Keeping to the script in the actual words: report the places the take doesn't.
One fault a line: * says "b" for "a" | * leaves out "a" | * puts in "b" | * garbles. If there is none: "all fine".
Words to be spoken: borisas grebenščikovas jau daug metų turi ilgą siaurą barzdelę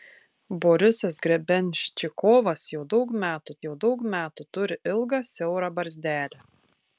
* puts in "jau daug metų"